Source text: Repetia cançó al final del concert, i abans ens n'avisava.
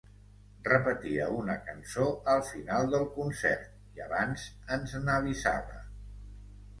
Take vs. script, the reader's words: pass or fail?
fail